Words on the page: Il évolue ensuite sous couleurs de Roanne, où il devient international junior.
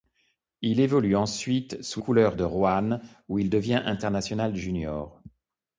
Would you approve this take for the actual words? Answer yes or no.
yes